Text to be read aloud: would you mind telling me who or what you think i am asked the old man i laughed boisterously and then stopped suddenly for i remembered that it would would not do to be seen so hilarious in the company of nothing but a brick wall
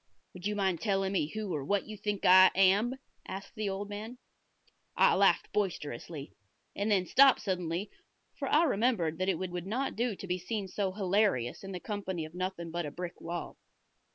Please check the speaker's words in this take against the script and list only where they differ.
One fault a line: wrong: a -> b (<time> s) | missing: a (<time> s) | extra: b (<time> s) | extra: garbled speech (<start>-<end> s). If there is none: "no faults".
no faults